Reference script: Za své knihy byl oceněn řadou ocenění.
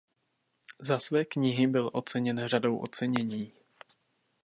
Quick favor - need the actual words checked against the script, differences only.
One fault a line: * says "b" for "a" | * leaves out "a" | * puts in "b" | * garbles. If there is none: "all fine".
all fine